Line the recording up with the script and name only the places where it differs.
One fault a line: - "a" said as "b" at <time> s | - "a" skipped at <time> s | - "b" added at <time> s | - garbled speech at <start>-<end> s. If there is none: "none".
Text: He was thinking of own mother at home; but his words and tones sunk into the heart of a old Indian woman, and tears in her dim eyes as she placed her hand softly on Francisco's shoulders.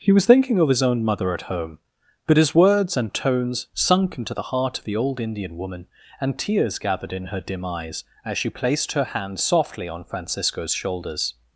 - "his" added at 0.7 s
- "a" said as "the" at 4.8 s
- "gathered" added at 6.8 s